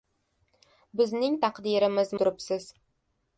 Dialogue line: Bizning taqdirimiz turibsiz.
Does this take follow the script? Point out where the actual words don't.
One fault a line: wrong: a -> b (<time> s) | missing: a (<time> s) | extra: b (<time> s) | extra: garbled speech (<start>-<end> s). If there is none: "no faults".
no faults